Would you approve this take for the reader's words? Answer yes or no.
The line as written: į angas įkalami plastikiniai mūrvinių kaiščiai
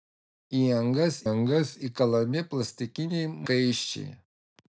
no